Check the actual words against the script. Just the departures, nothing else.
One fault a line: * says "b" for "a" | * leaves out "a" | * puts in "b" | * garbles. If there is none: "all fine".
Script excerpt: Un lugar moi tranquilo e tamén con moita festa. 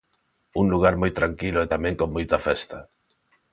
all fine